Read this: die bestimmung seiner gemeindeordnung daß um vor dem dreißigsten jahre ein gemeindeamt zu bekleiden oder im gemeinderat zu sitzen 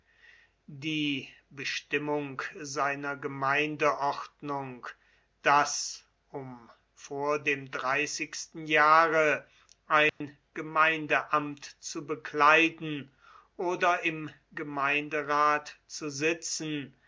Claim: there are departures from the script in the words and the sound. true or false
true